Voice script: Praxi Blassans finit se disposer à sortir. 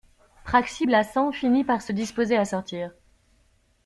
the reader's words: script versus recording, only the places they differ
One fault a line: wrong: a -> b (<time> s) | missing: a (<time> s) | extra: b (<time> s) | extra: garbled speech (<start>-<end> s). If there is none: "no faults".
extra: par (1.6 s)